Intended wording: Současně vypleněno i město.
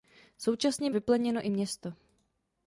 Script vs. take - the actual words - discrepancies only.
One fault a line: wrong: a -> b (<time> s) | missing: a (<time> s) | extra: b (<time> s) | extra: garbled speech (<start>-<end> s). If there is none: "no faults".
no faults